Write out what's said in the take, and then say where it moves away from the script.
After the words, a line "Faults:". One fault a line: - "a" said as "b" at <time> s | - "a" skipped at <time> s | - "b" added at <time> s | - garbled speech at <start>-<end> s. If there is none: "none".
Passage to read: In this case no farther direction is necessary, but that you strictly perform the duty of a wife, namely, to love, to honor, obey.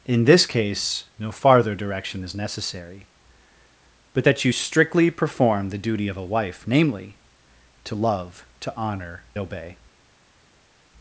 In this case no farther direction is necessary, but that you strictly perform the duty of a wife, namely, to love, to honor, obey.
Faults:
none